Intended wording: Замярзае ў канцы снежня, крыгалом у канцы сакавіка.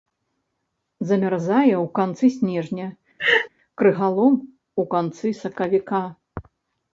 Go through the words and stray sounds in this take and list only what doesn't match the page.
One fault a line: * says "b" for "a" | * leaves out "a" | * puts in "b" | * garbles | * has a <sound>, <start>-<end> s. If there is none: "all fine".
* has a laugh, 3.2-3.5 s